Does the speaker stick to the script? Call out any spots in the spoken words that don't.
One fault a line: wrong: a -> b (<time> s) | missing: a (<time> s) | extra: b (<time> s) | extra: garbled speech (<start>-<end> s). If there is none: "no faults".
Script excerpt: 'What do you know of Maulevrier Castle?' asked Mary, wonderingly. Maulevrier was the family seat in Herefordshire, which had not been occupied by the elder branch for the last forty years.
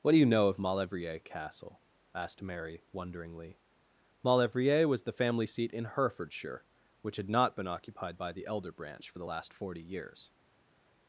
no faults